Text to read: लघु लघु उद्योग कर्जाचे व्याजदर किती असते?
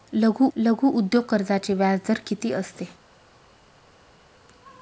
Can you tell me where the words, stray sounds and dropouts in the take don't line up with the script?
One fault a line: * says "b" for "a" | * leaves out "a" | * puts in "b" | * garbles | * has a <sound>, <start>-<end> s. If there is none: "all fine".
all fine